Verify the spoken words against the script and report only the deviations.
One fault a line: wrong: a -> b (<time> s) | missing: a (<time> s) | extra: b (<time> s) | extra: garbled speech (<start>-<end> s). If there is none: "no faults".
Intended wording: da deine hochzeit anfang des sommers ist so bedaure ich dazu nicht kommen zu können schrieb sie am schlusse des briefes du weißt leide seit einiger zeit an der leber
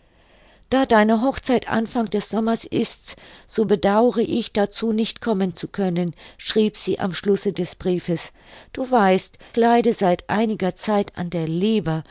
no faults